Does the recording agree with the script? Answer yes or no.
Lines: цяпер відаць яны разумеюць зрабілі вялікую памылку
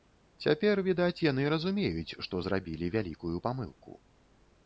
no